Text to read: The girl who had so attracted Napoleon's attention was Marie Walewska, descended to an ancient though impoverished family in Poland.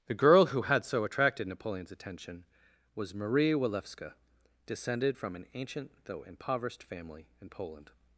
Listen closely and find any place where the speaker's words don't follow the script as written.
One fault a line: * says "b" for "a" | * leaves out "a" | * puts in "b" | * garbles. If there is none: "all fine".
* says "from" for "to"